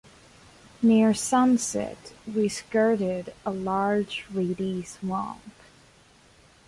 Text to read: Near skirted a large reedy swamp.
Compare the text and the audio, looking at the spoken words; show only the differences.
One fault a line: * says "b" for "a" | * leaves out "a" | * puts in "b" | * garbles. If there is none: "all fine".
* puts in "sunset we"